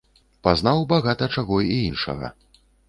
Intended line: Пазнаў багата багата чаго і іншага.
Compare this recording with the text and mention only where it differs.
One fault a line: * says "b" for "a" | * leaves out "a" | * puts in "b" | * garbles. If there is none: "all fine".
* leaves out "багата"